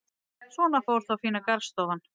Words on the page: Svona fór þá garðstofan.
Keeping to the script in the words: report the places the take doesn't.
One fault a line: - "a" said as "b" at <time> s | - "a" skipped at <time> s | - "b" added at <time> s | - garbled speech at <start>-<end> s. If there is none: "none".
- "fína" added at 1.2 s